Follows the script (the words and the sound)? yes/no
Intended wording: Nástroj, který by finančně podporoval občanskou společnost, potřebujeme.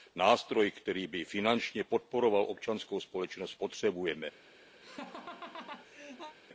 no